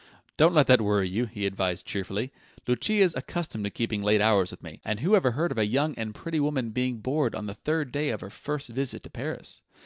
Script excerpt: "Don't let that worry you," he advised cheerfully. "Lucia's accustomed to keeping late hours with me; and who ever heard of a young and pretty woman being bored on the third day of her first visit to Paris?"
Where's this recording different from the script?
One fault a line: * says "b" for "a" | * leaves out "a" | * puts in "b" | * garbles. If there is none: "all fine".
all fine